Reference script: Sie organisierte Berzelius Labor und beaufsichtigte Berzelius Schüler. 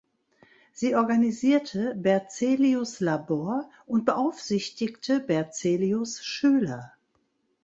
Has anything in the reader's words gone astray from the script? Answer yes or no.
no